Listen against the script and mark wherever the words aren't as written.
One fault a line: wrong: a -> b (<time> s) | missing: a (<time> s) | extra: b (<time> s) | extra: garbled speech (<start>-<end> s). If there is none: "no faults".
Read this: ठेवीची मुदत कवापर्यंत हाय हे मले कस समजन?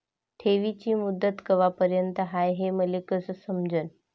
no faults